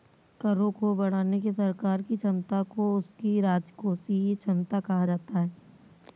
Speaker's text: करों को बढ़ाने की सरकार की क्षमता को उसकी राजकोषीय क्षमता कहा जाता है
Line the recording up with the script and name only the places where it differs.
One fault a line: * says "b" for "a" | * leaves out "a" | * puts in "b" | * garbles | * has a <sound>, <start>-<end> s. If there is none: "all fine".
all fine